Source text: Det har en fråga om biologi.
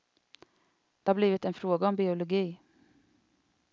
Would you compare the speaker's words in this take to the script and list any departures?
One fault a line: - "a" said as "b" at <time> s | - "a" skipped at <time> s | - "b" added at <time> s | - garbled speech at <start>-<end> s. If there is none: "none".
- "blivit" added at 1.1 s